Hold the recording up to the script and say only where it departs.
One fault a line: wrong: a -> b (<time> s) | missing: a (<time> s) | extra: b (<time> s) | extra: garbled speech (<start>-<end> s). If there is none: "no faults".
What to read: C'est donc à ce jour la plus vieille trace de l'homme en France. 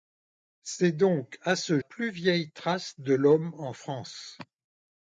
missing: jour la (1.8 s)